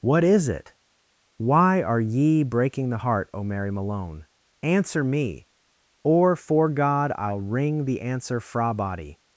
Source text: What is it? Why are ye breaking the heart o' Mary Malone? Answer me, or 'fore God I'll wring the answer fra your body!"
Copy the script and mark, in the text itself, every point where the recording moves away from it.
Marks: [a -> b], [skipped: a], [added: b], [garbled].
What is it? Why are ye breaking the heart o' Mary Malone? Answer me, or 'fore God I'll wring the answer fra [skipped: your] body!"